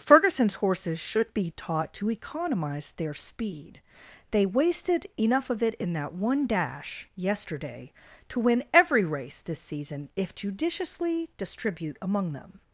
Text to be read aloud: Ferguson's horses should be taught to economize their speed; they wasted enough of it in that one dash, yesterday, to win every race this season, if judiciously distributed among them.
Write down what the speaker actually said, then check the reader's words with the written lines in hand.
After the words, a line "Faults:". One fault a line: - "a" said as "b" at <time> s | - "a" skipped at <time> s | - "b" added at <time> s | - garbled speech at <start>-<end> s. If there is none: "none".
Ferguson's horses should be taught to economize their speed; they wasted enough of it in that one dash, yesterday, to win every race this season, if judiciously distribute among them.
Faults:
- "distributed" said as "distribute" at 11.4 s